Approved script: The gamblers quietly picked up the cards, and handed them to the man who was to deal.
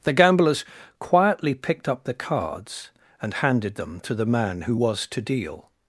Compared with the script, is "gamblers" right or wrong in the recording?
right